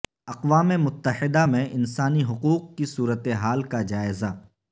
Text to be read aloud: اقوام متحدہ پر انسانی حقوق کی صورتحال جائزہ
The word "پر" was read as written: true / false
false